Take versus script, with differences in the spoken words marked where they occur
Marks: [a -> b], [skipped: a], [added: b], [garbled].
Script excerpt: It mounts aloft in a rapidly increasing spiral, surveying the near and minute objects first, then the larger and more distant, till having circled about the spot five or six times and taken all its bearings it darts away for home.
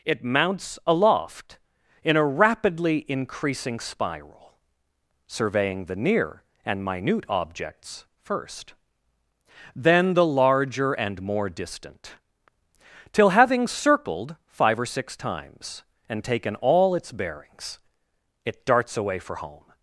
It mounts aloft in a rapidly increasing spiral, surveying the near and minute objects first, then the larger and more distant, till having circled [skipped: about the spot] five or six times and taken all its bearings it darts away for home.